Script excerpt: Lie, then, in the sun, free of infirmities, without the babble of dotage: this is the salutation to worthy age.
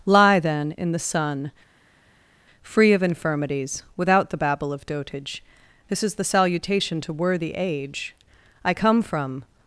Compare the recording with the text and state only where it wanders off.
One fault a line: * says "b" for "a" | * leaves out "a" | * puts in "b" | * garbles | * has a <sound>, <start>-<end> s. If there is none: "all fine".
* puts in "I come from"